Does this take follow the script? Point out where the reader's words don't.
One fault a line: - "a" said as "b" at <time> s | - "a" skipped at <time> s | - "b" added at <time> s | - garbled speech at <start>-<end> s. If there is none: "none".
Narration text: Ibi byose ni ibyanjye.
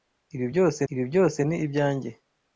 - "ibi byose" added at 0.9 s